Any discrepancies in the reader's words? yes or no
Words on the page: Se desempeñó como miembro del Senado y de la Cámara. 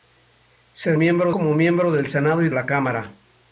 yes